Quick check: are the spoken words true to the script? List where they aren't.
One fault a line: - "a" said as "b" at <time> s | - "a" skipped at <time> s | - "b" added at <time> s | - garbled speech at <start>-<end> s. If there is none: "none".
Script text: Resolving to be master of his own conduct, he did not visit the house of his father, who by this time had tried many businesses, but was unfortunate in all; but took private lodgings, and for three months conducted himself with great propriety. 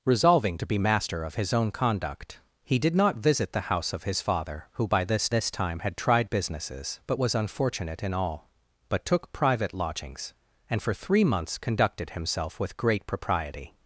- "this" added at 5.3 s
- "many" skipped at 6.3 s